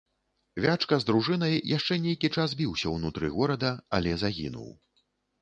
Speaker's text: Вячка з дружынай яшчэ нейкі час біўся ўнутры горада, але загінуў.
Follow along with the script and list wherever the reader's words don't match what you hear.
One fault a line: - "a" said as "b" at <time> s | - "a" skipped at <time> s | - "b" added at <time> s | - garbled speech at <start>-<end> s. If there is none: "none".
none